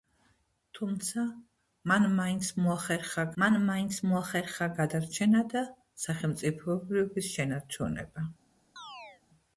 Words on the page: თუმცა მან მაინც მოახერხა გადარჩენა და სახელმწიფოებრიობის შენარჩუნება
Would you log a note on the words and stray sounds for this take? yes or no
yes